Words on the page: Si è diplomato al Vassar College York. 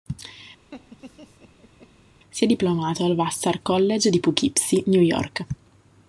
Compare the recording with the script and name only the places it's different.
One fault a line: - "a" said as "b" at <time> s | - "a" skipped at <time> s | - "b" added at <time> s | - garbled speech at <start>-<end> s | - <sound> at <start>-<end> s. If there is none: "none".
- laugh at 0.7-1.9 s
- "di Poughkeepsie New" added at 4.1 s